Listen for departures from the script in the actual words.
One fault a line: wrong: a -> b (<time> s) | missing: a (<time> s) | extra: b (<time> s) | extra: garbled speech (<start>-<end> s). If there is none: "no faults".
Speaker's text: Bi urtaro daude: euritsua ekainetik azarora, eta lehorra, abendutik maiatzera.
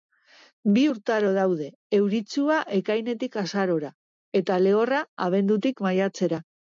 no faults